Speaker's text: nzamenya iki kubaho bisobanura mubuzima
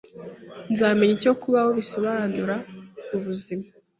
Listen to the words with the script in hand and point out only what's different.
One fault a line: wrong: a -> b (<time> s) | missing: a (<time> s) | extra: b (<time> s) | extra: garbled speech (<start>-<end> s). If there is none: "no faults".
wrong: iki -> icyo (1.2 s)